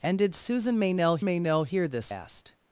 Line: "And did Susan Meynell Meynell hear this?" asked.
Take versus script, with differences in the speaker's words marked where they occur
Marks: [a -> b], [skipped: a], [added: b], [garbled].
"And did Susan Meynell Meynell hear this?" asked.